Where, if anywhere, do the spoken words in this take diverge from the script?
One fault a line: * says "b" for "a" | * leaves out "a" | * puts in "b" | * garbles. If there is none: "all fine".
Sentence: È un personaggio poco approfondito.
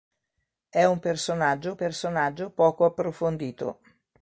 * puts in "personaggio"